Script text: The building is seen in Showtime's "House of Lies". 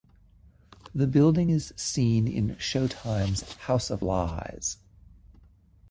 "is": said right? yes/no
yes